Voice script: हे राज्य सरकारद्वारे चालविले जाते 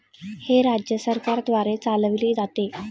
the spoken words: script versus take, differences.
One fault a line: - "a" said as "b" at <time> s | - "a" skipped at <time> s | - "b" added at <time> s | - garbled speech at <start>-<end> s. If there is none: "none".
none